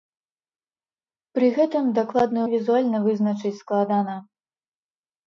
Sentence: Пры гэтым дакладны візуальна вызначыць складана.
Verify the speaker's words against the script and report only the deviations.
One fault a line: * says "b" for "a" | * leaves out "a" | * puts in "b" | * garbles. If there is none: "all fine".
all fine